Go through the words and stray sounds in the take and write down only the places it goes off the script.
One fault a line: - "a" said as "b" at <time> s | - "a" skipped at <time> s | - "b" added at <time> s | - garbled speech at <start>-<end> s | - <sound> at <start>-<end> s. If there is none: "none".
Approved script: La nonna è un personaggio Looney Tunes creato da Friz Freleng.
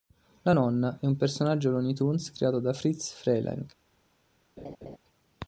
- laugh at 4.6-5.0 s